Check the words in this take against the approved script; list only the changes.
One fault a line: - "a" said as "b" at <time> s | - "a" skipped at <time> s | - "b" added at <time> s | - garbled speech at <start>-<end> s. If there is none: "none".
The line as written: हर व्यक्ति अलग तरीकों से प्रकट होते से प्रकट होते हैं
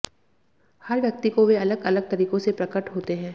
- "अलग तरीकों से प्रकट होते" said as "को वे अलग अलग तरीकों" at 1.3 s